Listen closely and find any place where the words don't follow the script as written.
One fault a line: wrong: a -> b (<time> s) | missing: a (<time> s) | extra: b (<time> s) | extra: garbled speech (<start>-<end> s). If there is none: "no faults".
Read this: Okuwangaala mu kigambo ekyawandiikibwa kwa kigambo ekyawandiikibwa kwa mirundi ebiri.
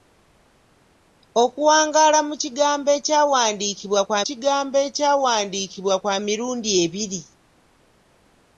no faults